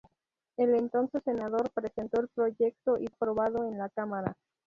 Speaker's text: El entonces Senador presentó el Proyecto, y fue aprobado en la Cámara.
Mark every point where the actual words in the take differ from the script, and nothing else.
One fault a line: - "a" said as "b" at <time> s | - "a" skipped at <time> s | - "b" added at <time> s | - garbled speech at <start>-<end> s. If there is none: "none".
- "fue" skipped at 3.0 s